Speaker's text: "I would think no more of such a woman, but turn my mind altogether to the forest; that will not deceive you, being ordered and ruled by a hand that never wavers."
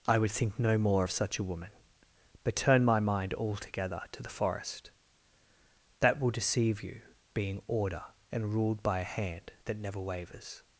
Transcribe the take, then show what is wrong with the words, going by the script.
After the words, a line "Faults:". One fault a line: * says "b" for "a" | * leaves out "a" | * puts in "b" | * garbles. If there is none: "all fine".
"I would think no more of such a woman, but turn my mind altogether to the forest; that will deceive you, being order and ruled by a hand that never wavers."
Faults:
* leaves out "not"
* says "order" for "ordered"